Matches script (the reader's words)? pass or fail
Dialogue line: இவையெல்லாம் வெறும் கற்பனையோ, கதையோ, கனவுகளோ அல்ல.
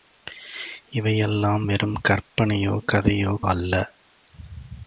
fail